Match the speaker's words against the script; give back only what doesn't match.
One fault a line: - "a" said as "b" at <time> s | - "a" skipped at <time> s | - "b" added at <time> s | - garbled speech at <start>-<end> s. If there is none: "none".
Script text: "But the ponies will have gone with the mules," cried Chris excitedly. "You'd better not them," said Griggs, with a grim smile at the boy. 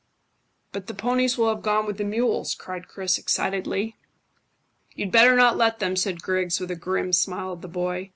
- "let" added at 5.6 s